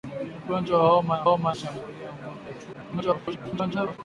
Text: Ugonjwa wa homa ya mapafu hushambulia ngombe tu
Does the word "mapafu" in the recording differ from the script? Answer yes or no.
yes